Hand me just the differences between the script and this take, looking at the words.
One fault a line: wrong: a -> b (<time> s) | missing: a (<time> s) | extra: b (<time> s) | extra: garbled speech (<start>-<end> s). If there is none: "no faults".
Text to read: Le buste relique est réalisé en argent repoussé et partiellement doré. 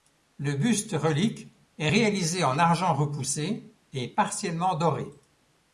no faults